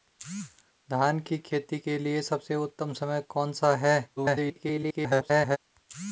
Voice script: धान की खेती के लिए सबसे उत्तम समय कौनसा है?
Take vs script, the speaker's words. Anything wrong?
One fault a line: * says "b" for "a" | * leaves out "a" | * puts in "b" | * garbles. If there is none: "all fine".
* garbles